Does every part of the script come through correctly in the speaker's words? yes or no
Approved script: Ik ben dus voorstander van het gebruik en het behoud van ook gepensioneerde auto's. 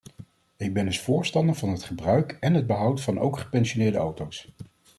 yes